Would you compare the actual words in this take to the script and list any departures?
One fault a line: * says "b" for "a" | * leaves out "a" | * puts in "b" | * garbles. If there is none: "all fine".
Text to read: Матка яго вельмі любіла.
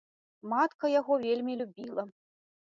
all fine